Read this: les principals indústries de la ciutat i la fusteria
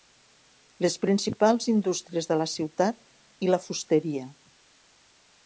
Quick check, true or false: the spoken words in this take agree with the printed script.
true